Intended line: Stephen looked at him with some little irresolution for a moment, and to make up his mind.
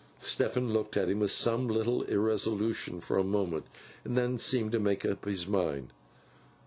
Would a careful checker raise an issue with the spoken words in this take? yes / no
yes